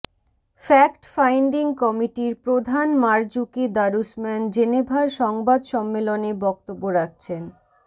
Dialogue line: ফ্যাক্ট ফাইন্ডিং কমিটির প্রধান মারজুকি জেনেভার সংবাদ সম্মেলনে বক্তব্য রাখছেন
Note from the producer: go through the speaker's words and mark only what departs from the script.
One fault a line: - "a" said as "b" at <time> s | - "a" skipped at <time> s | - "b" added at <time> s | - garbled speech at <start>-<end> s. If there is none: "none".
- "দারুসম্যান" added at 3.8 s